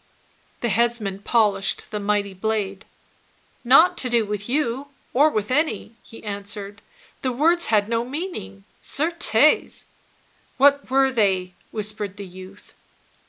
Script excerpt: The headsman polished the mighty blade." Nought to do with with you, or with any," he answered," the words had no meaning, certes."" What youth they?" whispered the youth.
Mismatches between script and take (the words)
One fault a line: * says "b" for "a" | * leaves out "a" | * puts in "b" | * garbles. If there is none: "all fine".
* leaves out "with"
* says "were" for "youth"